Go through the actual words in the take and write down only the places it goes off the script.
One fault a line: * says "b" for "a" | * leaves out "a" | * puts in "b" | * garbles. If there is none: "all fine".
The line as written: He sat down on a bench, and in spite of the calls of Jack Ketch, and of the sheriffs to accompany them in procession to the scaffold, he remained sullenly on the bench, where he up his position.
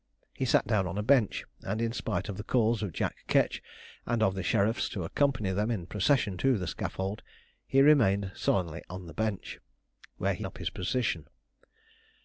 all fine